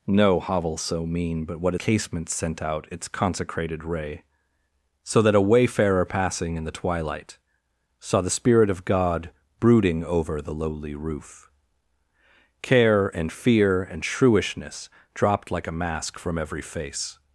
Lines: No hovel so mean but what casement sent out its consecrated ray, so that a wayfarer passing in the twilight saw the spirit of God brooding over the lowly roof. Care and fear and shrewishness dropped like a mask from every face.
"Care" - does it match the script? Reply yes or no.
yes